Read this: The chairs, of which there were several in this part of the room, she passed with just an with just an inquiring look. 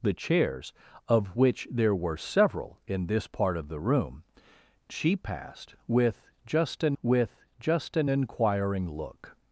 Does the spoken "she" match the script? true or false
true